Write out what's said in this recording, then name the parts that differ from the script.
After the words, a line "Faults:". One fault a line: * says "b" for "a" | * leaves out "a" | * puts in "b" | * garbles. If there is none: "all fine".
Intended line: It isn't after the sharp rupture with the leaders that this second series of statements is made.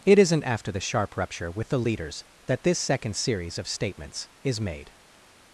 It isn't after the sharp rupture with the leaders that this second series of statements is made.
Faults:
all fine